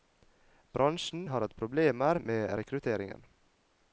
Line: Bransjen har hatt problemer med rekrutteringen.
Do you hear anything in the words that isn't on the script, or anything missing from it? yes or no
no